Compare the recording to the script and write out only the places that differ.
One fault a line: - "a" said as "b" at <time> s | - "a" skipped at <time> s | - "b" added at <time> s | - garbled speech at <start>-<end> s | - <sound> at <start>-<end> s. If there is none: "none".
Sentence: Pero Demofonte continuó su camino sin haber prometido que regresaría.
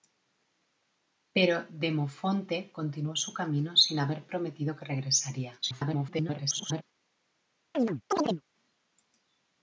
- garbled speech at 5.6-6.8 s
- chirp at 7.7-8.4 s